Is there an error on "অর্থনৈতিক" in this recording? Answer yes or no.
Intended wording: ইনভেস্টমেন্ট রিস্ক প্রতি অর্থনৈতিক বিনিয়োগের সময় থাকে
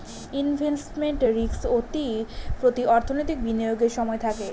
no